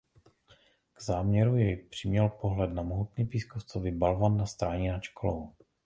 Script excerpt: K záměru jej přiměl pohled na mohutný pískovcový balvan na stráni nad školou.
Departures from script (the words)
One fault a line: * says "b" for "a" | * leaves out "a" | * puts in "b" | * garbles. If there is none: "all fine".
all fine